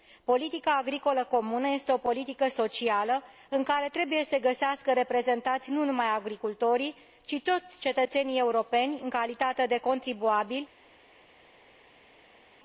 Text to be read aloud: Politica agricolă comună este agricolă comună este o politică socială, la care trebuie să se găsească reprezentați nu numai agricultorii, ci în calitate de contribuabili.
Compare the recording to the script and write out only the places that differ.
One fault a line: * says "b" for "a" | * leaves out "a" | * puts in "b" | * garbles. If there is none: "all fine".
* leaves out "agricolă comună este"
* says "în" for "la"
* puts in "toți cetățenii europeni"